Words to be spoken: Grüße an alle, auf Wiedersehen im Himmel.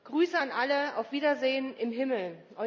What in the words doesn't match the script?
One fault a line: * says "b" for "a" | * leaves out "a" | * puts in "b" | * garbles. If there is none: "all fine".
all fine